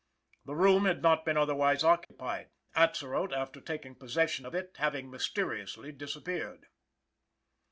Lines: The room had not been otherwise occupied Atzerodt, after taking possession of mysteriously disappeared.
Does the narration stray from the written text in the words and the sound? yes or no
yes